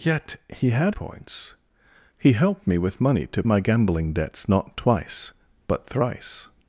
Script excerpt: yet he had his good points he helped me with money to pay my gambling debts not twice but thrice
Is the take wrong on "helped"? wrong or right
right